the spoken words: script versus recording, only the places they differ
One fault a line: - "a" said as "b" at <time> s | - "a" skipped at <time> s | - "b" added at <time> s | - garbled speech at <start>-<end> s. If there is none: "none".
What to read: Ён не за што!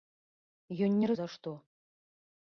none